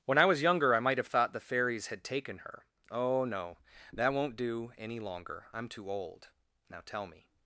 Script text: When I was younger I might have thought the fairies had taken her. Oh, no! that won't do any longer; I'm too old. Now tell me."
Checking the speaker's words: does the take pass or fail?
pass